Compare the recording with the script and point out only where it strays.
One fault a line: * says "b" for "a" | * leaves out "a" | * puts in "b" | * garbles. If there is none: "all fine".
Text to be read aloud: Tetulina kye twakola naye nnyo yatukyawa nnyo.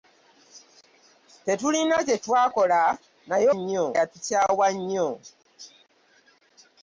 all fine